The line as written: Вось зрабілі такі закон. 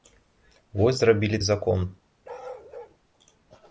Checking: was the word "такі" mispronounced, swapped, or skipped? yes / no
yes